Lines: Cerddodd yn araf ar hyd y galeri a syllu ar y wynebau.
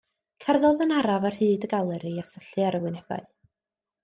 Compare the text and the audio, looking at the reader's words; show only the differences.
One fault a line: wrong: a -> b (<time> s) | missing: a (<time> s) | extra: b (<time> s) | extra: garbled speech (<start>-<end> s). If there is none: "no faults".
no faults